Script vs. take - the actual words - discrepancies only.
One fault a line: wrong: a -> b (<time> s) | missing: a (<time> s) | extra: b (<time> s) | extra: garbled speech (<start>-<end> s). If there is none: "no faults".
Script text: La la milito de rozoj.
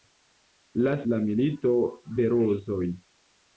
no faults